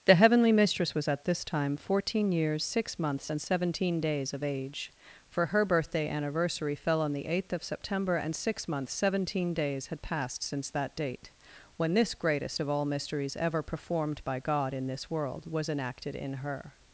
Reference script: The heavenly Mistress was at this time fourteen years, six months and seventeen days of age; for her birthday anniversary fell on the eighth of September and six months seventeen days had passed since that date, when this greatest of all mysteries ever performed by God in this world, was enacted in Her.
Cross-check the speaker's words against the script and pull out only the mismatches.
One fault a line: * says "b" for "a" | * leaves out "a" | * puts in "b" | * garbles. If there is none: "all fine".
all fine